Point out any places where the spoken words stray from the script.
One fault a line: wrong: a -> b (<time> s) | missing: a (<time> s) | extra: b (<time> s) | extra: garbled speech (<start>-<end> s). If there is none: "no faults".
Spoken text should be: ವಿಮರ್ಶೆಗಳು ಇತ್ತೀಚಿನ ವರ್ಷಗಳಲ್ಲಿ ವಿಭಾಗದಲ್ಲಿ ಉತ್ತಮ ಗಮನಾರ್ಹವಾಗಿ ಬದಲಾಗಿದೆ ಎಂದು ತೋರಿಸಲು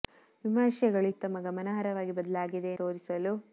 missing: ಇತ್ತೀಚಿನ ವರ್ಷಗಳಲ್ಲಿ ವಿಭಾಗದಲ್ಲಿ (1.1 s)
missing: ಎಂದು (2.7 s)